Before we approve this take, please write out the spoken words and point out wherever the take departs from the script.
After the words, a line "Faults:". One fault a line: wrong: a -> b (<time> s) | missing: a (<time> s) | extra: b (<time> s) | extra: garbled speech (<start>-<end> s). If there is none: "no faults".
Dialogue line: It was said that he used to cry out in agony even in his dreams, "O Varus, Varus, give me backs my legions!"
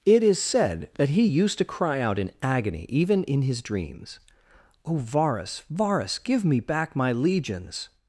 It is said that he used to cry out in agony even in his dreams, "O Varus, Varus, give me back my legions!"
Faults:
wrong: was -> is (0.2 s)
wrong: backs -> back (6.6 s)